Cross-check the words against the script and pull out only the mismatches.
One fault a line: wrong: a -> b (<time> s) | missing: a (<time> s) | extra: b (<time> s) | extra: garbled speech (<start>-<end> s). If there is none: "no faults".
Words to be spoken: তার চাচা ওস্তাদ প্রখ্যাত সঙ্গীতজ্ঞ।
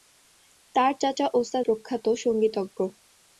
no faults